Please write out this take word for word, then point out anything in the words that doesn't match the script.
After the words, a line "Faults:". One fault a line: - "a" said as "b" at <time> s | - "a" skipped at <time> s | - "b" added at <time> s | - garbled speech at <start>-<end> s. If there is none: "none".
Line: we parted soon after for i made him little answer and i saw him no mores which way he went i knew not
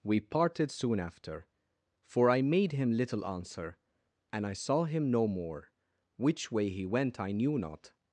we parted soon after for i made him little answer and i saw him no more which way he went i knew not
Faults:
- "mores" said as "more" at 5.3 s